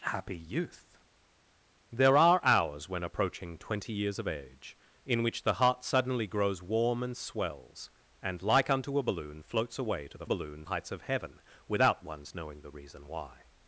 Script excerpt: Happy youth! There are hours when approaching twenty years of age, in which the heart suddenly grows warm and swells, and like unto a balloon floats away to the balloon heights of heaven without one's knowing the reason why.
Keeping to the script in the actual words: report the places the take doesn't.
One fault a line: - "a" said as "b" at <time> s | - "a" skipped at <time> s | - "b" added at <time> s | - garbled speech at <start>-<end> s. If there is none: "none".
none